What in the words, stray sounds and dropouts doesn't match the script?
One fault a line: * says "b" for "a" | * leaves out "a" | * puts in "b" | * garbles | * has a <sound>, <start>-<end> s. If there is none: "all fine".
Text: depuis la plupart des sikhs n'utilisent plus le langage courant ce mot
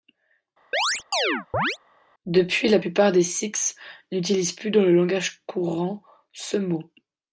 * has a chirp, 0.7-1.8 s
* puts in "dans"